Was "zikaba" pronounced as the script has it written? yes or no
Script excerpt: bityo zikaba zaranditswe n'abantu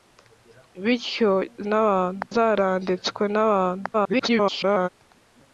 no